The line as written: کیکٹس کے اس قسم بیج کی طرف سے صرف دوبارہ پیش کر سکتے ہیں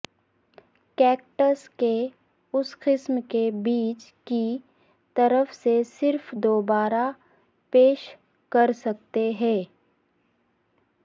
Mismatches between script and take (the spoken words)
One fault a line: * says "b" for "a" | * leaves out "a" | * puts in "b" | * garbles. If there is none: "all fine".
* puts in "کے"